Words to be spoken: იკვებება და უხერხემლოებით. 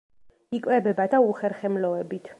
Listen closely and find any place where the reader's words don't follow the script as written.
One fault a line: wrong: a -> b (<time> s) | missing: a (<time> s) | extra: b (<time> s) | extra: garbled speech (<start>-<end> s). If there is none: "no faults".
no faults